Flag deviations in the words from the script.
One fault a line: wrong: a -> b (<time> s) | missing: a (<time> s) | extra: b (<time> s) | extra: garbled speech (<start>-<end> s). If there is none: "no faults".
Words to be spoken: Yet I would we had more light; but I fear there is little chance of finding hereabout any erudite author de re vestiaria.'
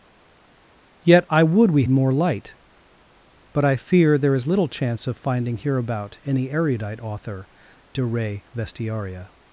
missing: had (1.8 s)